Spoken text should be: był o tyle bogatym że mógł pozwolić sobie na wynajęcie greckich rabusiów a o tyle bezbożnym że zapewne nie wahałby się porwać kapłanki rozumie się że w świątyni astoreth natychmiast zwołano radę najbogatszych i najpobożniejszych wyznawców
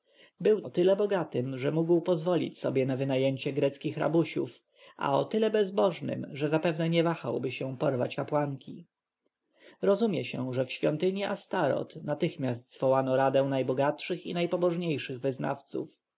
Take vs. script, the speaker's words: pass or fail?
pass